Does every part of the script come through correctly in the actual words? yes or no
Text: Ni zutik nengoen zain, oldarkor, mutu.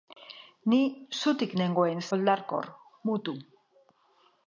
no